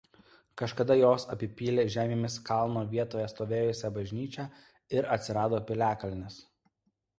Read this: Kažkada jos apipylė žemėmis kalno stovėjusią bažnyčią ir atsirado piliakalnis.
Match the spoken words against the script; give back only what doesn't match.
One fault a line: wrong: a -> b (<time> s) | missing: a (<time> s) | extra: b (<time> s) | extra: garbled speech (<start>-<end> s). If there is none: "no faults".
extra: vietoje (3.0 s)